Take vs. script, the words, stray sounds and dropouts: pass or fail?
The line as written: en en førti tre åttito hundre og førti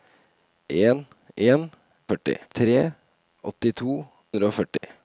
fail